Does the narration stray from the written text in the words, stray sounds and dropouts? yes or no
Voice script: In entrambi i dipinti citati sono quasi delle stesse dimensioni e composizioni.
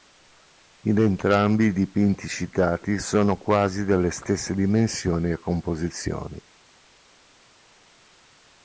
no